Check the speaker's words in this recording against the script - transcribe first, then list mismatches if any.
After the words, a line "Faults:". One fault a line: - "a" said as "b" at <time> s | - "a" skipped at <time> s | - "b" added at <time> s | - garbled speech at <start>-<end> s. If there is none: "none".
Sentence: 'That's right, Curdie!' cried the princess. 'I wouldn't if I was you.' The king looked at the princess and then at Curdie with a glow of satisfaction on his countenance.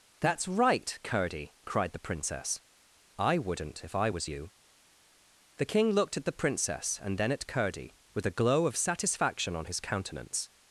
'That's right, Curdie!' cried the princess. 'I wouldn't if I was you.' The king looked at the princess and then at Curdie with a glow of satisfaction on his countenance.
Faults:
none